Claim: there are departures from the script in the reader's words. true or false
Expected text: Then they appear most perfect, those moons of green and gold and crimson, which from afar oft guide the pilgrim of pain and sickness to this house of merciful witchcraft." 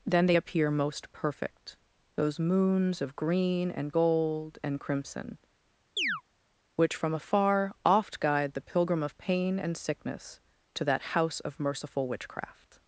true